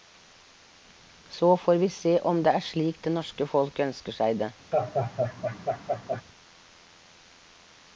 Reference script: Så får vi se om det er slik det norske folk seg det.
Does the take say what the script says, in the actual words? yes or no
no